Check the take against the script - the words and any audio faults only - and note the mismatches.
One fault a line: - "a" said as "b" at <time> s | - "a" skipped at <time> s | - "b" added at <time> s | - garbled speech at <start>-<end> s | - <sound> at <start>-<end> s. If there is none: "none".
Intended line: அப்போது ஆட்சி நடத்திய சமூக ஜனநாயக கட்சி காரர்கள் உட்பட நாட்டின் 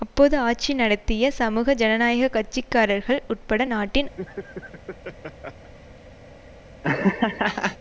- laugh at 4.2-5.7 s
- laugh at 6.8-7.8 s